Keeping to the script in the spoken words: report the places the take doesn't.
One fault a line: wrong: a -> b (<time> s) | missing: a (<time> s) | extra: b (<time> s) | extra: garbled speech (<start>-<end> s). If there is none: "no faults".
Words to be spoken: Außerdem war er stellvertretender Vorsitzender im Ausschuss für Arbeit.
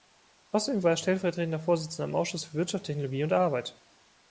extra: Wirtschaft Technologie und (2.5 s)